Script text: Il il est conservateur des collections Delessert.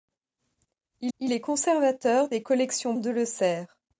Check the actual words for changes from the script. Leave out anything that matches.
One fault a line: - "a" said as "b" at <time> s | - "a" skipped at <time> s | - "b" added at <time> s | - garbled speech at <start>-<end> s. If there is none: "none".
none